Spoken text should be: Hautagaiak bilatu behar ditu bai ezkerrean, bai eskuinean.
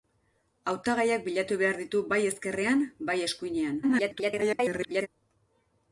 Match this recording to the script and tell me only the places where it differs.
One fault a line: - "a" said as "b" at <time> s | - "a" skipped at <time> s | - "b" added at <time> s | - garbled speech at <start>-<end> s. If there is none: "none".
- garbled speech at 3.8-5.1 s